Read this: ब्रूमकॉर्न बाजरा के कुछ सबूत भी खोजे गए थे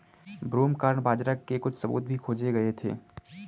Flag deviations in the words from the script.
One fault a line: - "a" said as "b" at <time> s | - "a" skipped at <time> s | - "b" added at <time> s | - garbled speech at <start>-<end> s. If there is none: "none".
none